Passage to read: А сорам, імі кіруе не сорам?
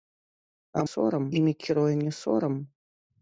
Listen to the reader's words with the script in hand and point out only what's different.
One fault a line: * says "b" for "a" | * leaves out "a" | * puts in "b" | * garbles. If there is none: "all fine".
all fine